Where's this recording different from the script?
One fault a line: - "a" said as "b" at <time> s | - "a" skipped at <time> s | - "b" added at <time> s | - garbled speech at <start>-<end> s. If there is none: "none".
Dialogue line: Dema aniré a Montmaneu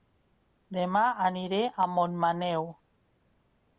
none